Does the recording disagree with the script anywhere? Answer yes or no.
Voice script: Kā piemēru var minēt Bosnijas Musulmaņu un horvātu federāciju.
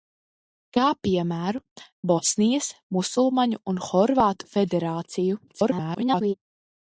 yes